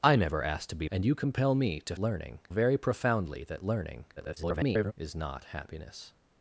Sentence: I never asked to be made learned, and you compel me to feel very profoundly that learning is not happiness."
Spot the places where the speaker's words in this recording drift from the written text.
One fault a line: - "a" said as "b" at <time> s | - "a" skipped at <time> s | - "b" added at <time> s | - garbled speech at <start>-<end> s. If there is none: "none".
- "made learned" skipped at 0.9 s
- "feel" said as "learning" at 2.0 s
- garbled speech at 4.2-4.9 s